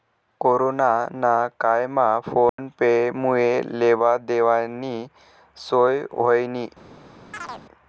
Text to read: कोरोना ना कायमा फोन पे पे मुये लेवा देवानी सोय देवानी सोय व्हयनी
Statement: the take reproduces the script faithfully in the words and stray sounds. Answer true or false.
false